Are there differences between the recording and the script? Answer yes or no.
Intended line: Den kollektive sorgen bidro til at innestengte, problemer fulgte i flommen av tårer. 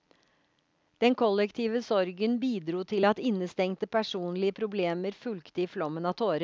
yes